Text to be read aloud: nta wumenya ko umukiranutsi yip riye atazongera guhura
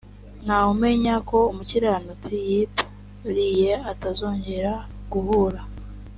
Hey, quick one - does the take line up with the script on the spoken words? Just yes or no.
yes